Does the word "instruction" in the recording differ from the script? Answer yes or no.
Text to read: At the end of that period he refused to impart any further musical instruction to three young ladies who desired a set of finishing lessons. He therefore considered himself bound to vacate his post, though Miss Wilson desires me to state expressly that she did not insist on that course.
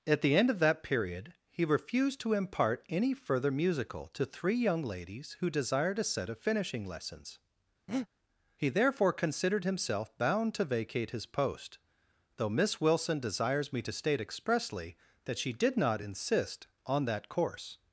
yes